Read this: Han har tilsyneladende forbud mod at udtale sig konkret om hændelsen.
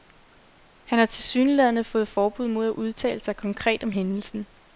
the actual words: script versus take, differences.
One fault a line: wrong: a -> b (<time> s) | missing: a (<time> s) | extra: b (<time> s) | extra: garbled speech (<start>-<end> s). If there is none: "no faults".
extra: fået (1.8 s)